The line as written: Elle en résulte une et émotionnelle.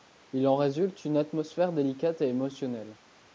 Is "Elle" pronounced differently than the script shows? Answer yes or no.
yes